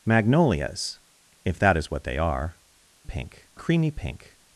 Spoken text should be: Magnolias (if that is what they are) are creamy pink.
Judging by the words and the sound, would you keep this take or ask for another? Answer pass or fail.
fail